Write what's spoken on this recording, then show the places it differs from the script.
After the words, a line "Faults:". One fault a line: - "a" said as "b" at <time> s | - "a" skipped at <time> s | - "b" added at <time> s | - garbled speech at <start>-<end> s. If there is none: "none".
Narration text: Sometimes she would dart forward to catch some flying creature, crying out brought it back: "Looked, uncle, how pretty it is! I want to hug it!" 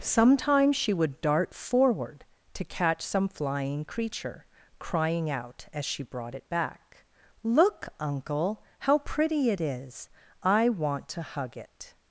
Sometimes she would dart forward to catch some flying creature, crying out as she brought it back: "Look, uncle, how pretty it is! I want to hug it!"
Faults:
- "as she" added at 5.7 s
- "Looked" said as "Look" at 7.4 s